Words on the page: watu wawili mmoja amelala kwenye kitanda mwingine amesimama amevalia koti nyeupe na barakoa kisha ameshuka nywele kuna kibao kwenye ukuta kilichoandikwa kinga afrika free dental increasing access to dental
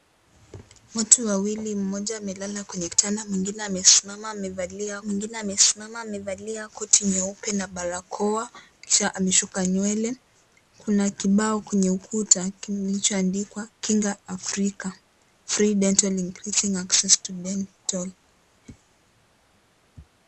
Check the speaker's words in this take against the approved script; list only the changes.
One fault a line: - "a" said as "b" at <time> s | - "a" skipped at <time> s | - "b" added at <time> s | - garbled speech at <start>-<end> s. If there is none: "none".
- "mwingine amesimama amevalia" added at 5.0 s